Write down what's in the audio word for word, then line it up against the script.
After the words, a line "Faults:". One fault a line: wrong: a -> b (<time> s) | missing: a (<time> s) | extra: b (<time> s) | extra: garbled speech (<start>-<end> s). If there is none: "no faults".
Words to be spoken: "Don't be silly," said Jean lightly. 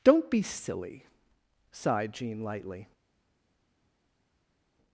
"Don't be silly," sighed Jean lightly.
Faults:
wrong: said -> sighed (1.7 s)